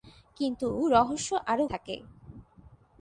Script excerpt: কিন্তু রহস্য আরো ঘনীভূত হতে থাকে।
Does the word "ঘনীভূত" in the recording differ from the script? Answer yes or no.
yes